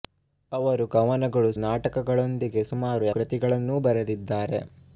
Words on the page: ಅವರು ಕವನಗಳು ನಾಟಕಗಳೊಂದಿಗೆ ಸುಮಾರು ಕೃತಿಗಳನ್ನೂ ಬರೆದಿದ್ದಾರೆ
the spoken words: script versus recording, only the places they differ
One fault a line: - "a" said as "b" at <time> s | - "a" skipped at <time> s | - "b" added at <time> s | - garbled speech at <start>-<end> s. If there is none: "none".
none